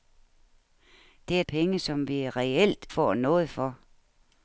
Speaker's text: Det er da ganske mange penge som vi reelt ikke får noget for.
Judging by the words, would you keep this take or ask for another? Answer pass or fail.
fail